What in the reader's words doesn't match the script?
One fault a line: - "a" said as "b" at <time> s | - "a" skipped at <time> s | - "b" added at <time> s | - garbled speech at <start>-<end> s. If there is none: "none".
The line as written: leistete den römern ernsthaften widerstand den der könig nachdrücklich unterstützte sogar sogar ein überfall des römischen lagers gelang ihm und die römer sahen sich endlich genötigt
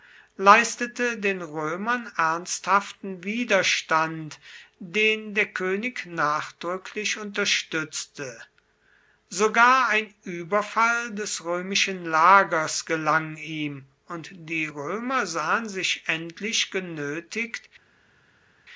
- "sogar" skipped at 9.9 s